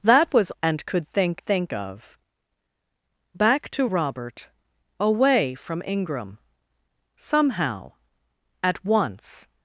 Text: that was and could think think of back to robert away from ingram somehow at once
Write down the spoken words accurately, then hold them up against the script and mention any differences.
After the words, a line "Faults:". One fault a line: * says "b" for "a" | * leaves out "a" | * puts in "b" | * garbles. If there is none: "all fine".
that was and could think think of back to robert away from ingram somehow at once
Faults:
all fine